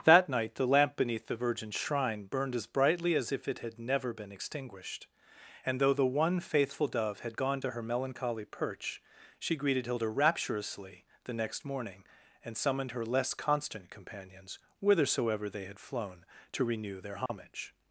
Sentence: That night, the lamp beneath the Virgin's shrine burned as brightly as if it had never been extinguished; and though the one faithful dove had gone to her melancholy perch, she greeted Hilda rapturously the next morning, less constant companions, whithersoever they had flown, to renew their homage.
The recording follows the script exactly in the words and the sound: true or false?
false